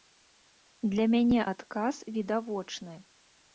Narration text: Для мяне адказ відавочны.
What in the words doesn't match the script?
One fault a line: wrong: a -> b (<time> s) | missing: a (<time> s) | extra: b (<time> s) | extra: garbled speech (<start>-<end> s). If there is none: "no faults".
no faults